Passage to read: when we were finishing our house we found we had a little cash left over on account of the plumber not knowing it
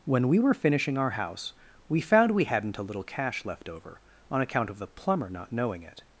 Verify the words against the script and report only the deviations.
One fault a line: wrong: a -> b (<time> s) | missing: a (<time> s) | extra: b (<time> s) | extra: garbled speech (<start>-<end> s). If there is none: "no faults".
wrong: had -> hadn't (2.5 s)